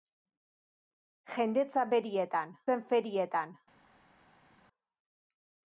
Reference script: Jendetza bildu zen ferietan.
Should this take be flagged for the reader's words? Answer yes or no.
yes